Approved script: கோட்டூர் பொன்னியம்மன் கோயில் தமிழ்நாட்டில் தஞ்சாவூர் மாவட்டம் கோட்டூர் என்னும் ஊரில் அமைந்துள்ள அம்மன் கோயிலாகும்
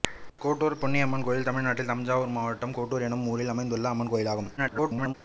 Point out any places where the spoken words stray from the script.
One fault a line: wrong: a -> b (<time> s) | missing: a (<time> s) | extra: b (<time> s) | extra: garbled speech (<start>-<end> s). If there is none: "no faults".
extra: garbled speech (4.6-5.1 s)